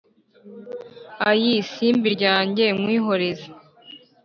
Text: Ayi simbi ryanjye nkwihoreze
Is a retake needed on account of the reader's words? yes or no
no